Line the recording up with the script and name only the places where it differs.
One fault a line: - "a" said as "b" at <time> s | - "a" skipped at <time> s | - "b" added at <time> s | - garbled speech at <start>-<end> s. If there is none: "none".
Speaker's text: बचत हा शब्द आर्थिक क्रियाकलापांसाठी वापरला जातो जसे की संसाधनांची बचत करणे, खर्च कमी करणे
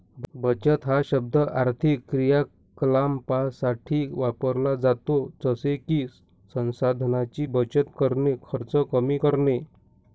none